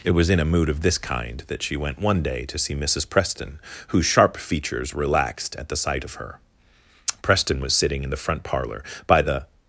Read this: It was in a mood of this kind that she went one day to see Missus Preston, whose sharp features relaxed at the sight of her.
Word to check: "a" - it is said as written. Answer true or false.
true